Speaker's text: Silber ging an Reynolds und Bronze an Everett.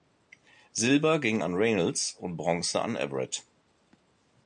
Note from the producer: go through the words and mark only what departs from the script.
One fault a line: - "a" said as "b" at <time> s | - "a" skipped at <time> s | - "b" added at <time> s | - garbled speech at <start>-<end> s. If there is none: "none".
none